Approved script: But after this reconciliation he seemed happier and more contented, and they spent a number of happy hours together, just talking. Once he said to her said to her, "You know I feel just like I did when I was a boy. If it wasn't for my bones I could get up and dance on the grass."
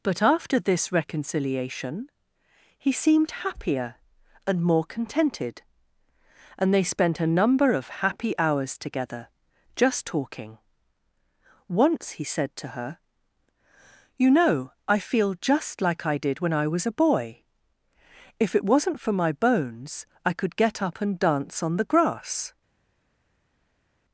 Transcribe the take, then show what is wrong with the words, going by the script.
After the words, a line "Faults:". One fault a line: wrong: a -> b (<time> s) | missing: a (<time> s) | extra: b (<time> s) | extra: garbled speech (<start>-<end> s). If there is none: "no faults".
But after this reconciliation he seemed happier and more contented, and they spent a number of happy hours together, just talking. Once he said to her, "You know I feel just like I did when I was a boy. If it wasn't for my bones I could get up and dance on the grass."
Faults:
missing: said to her (13.0 s)